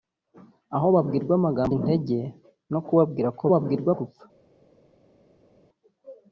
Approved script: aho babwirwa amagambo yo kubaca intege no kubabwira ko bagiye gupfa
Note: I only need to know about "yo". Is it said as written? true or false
false